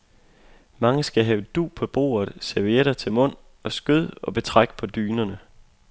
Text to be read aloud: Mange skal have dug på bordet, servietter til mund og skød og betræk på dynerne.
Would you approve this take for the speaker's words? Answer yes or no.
yes